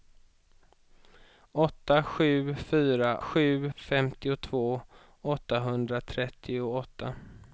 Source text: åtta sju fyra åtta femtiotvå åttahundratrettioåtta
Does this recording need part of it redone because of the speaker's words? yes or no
yes